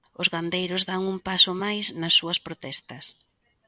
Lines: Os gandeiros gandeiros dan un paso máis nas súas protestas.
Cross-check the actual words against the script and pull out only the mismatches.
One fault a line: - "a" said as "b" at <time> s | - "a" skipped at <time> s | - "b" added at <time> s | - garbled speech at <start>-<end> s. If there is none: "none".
- "gandeiros" skipped at 0.8 s